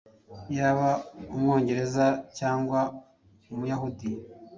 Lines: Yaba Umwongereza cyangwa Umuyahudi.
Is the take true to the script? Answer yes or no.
yes